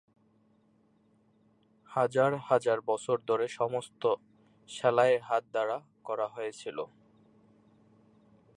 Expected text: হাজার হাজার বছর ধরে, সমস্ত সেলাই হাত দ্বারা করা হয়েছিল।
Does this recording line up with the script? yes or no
yes